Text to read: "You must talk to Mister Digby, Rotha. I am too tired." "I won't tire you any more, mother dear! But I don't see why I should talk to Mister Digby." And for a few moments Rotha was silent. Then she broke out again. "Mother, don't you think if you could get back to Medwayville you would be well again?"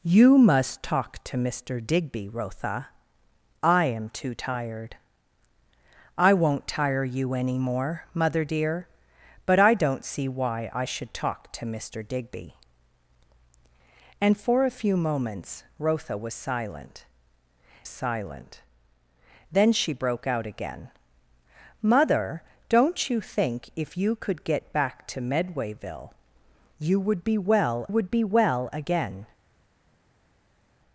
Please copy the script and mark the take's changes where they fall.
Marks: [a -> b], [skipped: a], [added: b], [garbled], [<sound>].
"You must talk to Mister Digby, Rotha. I am too tired." "I won't tire you any more, mother dear! But I don't see why I should talk to Mister Digby." And for a few moments Rotha was silent. [added: silent] Then she broke out again. "Mother, don't you think if you could get back to Medwayville you would be well [added: would be well] again?"